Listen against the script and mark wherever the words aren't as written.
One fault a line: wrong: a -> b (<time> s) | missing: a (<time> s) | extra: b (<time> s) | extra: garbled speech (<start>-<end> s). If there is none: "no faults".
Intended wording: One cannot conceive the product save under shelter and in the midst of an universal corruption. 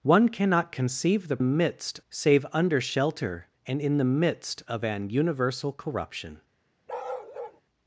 wrong: product -> midst (1.4 s)